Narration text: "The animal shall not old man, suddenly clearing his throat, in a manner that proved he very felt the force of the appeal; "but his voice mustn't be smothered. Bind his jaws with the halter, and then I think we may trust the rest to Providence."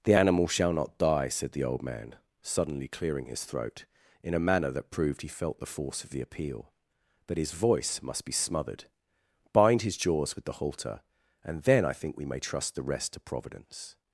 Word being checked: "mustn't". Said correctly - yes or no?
no